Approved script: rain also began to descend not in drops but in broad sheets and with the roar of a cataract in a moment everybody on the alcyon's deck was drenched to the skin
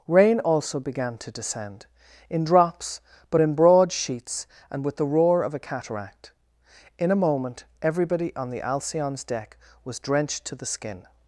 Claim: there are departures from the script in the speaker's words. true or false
true